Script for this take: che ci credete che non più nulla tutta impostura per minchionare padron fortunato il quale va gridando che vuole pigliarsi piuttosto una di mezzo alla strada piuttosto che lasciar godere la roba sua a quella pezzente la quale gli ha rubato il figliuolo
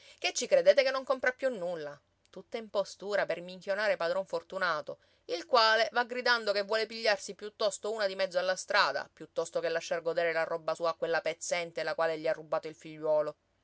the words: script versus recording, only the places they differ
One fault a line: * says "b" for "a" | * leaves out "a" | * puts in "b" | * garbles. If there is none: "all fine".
* puts in "compra"